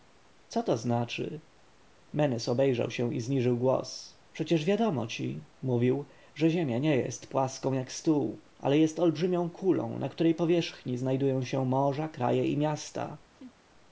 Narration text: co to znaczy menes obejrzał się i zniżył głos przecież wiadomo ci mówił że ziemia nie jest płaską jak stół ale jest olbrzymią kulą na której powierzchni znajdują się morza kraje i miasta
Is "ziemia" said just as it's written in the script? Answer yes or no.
yes